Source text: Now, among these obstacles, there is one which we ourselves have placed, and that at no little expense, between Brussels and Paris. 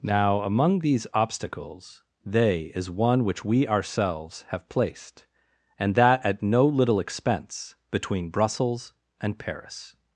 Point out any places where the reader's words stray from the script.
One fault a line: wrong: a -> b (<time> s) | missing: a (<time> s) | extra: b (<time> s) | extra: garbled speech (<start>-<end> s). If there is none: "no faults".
wrong: there -> they (2.2 s)